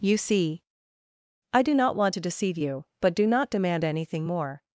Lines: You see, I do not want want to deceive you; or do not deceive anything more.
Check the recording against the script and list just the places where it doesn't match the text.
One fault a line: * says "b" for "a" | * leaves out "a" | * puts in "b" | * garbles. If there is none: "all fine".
* leaves out "want"
* says "but" for "or"
* says "demand" for "deceive"